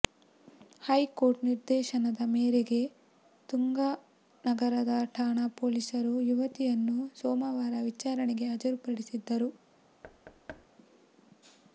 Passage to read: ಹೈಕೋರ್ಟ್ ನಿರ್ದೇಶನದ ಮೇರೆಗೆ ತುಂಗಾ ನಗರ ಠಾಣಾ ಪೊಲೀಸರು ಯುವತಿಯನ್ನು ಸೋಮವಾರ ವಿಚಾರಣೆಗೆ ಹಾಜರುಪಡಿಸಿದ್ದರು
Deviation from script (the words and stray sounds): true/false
true